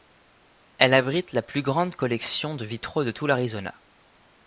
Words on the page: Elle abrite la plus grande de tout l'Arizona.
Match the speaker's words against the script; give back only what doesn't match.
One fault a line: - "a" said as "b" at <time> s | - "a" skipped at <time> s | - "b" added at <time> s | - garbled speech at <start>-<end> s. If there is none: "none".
- "collection de vitraux" added at 1.9 s